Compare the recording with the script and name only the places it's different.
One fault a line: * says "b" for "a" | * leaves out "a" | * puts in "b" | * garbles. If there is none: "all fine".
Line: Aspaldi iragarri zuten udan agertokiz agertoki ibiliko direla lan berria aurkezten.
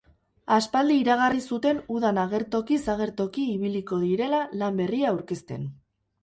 all fine